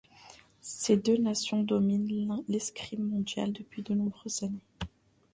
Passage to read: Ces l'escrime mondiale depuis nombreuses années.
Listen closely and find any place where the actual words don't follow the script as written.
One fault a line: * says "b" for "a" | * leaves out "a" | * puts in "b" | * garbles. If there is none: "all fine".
* puts in "deux nations dominent"
* puts in "de"